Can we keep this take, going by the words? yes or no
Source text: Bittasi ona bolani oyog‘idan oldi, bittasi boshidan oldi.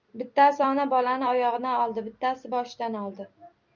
yes